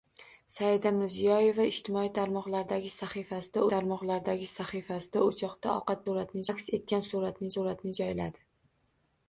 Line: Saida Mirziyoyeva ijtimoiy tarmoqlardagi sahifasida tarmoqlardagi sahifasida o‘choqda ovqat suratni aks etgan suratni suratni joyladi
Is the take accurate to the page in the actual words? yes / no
yes